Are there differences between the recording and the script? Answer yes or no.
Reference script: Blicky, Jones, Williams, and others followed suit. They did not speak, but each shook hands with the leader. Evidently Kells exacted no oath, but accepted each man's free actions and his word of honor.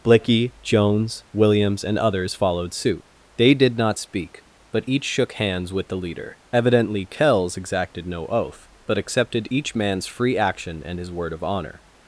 yes